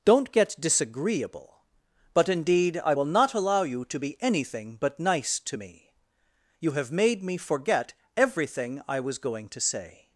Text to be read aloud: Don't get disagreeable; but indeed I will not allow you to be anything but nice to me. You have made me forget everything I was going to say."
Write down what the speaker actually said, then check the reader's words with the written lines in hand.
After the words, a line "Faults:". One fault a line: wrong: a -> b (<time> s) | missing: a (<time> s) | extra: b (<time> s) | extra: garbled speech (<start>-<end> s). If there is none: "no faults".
Don't get disagreeable; but indeed I will not allow you to be anything but nice to me. You have made me forget everything I was going to say."
Faults:
no faults